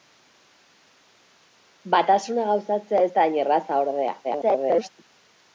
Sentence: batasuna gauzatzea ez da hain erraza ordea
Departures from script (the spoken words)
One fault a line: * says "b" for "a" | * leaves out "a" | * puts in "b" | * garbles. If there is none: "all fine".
* garbles